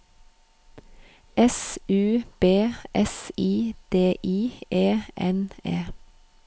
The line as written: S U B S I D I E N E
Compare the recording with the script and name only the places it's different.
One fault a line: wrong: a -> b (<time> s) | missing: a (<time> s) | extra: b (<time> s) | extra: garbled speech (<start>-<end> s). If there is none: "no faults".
no faults